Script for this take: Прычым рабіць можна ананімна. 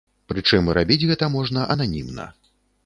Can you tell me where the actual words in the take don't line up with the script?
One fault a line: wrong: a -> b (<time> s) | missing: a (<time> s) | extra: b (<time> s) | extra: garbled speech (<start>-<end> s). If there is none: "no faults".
extra: гэта (1.1 s)